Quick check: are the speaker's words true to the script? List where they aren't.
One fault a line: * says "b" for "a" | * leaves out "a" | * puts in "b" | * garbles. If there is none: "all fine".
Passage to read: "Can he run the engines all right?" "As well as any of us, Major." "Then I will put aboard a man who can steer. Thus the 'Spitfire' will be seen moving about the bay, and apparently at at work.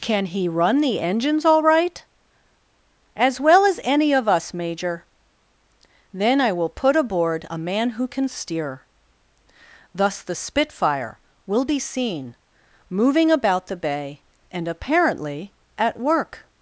* leaves out "at"